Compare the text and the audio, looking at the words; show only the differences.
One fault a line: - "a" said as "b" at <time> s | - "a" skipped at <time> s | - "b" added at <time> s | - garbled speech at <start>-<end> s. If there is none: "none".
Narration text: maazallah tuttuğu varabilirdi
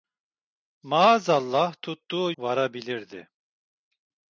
none